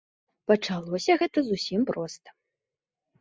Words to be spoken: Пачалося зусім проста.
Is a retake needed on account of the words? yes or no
yes